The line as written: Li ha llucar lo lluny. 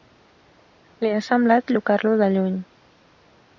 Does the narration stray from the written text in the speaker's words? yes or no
yes